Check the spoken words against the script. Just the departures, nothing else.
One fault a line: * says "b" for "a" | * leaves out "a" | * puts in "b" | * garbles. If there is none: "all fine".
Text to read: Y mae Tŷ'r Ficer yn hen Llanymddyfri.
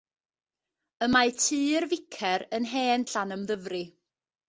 all fine